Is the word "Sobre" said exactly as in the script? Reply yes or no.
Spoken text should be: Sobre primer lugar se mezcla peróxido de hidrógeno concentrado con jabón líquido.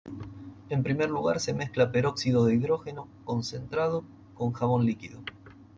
no